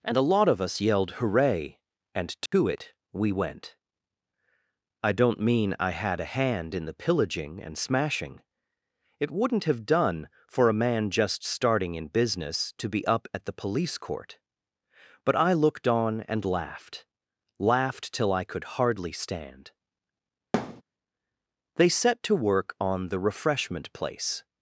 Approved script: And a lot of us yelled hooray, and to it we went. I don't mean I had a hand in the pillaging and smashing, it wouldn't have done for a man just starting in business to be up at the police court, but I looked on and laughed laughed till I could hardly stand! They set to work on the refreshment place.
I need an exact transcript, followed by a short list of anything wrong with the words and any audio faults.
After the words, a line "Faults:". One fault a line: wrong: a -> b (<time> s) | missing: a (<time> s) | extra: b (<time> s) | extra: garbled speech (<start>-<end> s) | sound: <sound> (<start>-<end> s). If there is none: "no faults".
And a lot of us yelled hooray, and to it we went. I don't mean I had a hand in the pillaging and smashing, it wouldn't have done for a man just starting in business to be up at the police court, but I looked on and laughed laughed till I could hardly stand! They set to work on the refreshment place.
Faults:
sound: dropout (2.5-2.5 s)
sound: thud (20.5-20.8 s)